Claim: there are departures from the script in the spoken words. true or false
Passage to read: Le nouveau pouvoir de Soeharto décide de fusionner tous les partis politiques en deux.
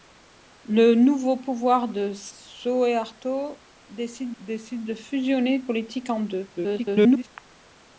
true